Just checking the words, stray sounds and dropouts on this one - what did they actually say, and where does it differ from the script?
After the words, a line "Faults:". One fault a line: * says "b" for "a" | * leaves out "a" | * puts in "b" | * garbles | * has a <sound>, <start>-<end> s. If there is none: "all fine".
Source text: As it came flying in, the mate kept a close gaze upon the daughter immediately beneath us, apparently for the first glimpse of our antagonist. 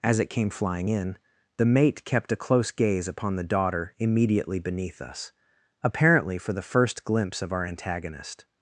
As it came flying in, the mate kept a close gaze upon the daughter immediately beneath us, apparently for the first glimpse of our antagonist.
Faults:
all fine